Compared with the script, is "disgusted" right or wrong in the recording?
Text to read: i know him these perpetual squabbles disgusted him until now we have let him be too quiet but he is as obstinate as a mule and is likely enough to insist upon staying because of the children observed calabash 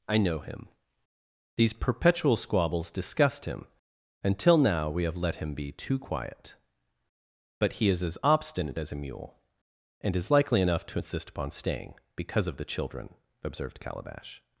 wrong